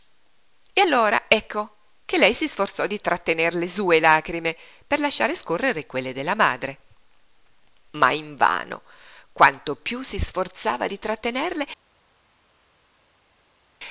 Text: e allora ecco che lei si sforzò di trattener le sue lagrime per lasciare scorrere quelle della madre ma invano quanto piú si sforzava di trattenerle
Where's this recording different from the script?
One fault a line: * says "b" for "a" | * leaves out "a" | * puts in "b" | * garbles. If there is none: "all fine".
all fine